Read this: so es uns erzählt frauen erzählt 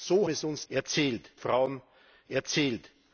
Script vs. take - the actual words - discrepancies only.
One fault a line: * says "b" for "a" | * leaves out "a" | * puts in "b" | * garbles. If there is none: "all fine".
all fine